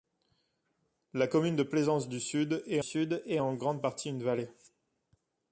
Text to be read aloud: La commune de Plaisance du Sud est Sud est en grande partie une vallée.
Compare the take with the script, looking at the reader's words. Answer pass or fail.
pass